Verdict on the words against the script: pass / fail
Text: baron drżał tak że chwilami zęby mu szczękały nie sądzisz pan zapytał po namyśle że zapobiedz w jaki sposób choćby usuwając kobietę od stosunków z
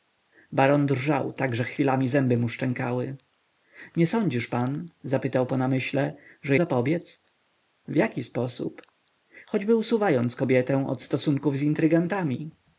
pass